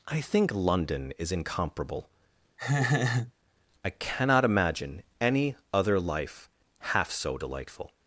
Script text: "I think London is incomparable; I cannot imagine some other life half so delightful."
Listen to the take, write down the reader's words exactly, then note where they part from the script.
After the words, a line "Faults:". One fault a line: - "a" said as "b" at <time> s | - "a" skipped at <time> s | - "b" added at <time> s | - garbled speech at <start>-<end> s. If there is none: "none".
"I think London is incomparable; I cannot imagine any other life half so delightful."
Faults:
- "some" said as "any" at 5.2 s